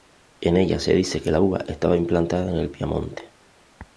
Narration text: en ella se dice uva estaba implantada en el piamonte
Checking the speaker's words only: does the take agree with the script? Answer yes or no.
no